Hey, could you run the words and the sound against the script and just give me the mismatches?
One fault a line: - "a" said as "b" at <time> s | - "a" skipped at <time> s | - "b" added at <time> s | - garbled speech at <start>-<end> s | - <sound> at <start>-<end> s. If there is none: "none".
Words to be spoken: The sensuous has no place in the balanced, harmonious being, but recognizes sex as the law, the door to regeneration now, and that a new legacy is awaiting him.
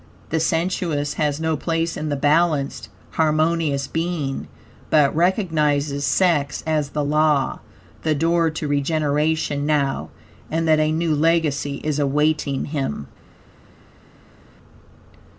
none